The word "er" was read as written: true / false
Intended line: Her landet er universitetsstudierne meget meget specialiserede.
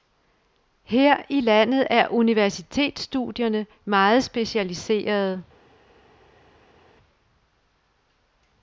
true